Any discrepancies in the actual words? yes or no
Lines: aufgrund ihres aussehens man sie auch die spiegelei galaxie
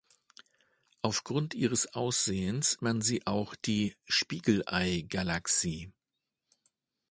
no